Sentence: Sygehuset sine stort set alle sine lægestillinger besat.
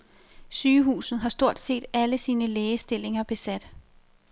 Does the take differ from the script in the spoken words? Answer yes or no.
yes